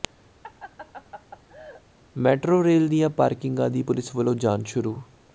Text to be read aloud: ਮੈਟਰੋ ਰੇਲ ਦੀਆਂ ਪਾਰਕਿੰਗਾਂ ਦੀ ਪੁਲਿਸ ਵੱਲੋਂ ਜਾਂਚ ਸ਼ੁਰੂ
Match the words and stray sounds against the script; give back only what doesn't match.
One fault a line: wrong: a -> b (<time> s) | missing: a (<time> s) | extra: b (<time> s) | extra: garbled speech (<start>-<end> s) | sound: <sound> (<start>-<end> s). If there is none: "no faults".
sound: laugh (0.4-1.8 s)